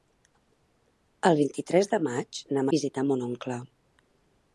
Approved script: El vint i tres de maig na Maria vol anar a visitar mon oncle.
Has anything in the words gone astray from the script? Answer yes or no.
yes